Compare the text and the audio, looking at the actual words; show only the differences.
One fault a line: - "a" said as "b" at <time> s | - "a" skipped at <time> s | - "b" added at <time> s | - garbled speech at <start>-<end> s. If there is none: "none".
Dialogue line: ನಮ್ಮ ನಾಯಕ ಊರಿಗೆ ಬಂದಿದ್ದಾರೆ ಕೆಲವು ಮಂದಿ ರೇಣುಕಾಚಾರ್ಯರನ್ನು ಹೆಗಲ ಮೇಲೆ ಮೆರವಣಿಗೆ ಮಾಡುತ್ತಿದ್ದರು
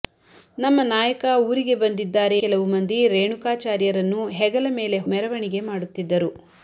none